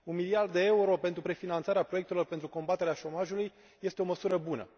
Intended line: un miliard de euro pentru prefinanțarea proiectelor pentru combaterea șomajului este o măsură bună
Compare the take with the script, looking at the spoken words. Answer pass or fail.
pass